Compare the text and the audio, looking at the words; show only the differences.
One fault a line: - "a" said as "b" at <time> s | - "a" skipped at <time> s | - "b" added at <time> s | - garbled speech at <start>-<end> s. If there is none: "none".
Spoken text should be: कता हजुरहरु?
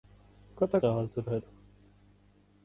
none